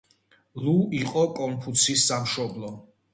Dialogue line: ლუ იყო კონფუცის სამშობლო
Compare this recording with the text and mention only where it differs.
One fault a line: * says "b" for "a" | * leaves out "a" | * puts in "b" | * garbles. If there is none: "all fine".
all fine